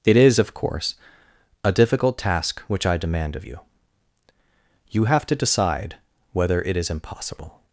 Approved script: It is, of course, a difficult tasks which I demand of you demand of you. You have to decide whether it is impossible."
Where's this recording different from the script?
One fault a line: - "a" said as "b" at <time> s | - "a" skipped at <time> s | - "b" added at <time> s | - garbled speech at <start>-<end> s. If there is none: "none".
- "tasks" said as "task" at 2.2 s
- "demand of you" skipped at 3.6 s